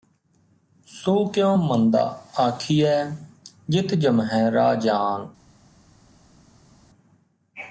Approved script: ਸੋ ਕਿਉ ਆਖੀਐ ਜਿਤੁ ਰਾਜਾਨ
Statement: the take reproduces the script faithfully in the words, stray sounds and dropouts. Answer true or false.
false